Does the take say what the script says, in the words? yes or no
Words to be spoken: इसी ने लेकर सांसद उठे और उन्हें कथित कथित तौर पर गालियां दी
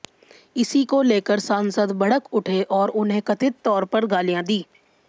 no